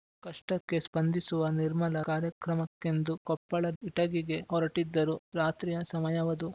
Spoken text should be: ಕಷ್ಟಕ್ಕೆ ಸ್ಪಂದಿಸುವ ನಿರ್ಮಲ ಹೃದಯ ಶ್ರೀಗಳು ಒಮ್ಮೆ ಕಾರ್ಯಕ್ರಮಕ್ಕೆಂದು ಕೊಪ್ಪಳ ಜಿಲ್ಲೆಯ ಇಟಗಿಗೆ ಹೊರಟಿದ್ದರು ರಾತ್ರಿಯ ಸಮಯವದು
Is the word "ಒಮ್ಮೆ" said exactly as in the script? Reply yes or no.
no